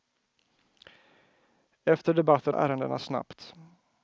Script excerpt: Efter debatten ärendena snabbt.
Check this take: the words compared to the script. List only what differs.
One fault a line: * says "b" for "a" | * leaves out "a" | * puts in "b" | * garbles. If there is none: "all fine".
all fine